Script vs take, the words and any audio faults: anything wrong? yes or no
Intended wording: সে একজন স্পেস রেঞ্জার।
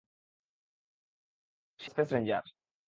yes